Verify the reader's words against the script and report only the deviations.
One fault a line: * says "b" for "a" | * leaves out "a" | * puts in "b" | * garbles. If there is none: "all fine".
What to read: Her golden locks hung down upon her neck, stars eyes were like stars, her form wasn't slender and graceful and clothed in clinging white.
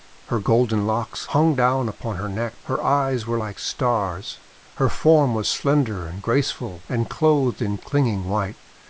* says "her" for "stars"
* says "was" for "wasn't"